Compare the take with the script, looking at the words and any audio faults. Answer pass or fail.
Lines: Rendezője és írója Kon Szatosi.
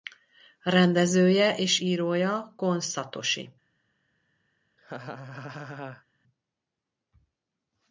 fail